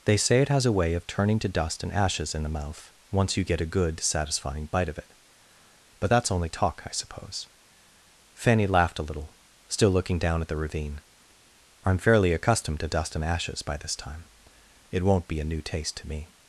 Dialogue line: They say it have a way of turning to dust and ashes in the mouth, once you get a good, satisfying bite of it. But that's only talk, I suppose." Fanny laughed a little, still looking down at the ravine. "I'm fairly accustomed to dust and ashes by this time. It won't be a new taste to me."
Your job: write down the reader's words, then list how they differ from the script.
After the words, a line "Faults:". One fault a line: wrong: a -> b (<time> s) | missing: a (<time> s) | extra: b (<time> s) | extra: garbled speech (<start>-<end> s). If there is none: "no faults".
They say it has a way of turning to dust and ashes in the mouth, once you get a good, satisfying bite of it. But that's only talk, I suppose." Fanny laughed a little, still looking down at the ravine. "I'm fairly accustomed to dust and ashes by this time. It won't be a new taste to me."
Faults:
wrong: have -> has (0.5 s)